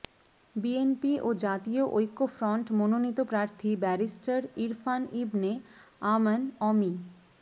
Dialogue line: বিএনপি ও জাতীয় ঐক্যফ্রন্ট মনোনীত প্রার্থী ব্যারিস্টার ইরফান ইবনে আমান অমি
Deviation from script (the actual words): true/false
false